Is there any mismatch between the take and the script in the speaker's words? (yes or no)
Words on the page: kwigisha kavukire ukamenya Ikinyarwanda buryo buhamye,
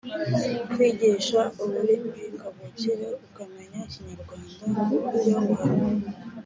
yes